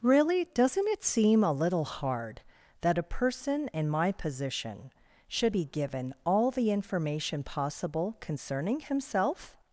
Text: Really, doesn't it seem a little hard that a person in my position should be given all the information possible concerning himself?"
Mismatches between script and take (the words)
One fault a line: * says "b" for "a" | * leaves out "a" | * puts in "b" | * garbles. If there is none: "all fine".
all fine